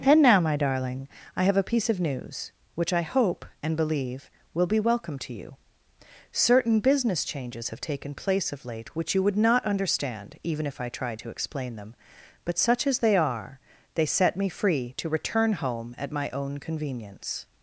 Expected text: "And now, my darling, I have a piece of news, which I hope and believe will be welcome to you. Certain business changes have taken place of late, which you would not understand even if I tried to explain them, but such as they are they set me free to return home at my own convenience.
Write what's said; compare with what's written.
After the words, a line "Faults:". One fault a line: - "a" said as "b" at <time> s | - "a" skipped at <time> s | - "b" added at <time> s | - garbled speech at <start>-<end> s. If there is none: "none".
"And now, my darling, I have a piece of news, which I hope and believe will be welcome to you. Certain business changes have taken place of late, which you would not understand even if I tried to explain them, but such as they are they set me free to return home at my own convenience.
Faults:
none